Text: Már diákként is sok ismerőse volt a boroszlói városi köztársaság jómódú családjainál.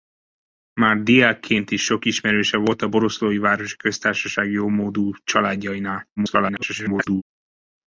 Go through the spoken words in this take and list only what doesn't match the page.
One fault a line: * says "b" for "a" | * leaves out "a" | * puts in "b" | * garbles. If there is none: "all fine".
* garbles